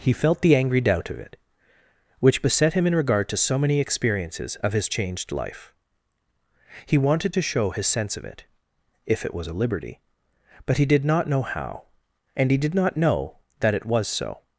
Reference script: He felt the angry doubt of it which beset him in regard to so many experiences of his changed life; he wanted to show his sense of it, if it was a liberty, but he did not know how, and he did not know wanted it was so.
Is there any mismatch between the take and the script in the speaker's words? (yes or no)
yes